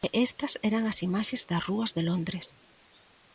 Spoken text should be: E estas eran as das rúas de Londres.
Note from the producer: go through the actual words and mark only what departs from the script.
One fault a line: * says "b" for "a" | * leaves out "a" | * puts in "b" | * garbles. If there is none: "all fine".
* puts in "imaxes"